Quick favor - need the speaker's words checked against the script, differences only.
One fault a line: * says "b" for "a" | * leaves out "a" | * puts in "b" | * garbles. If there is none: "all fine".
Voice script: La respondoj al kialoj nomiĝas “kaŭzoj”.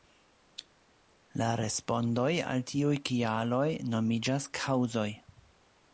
* puts in "tiuj"